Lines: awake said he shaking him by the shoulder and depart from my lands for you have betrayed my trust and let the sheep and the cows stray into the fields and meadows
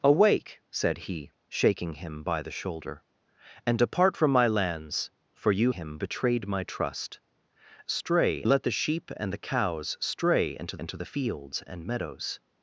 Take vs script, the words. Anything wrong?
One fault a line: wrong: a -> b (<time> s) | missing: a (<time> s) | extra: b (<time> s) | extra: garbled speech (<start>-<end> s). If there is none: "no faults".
wrong: have -> him (5.7 s)
wrong: and -> stray (7.9 s)
extra: into (10.8 s)